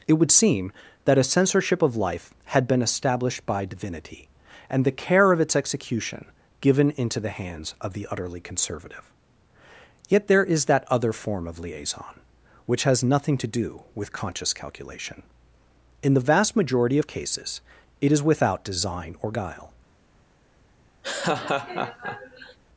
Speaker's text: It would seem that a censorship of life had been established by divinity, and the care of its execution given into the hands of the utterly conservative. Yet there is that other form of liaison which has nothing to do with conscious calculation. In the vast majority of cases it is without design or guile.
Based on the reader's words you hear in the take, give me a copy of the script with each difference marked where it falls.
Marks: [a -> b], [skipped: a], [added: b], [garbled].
It would seem that a censorship of life had been established by divinity, and the care of its execution given into the hands of the utterly conservative. Yet there is that other form of liaison which has nothing to do with conscious calculation. In the vast majority of cases it is without design or guile.